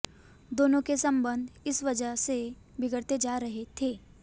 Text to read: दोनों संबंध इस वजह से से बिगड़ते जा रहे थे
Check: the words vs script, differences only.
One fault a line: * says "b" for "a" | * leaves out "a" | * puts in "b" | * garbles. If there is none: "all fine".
* puts in "के"
* leaves out "से"